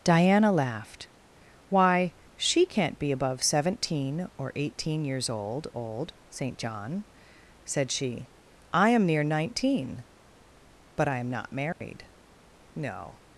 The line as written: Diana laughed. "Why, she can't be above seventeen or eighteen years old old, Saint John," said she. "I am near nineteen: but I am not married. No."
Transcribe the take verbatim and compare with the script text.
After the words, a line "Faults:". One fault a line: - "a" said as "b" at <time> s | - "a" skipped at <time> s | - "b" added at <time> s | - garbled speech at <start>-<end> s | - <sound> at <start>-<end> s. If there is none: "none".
Diana laughed. "Why, she can't be above seventeen or eighteen years old old, Saint John," said she. "I am near nineteen: but I am not married. No."
Faults:
- dropout at 11.7-11.8 s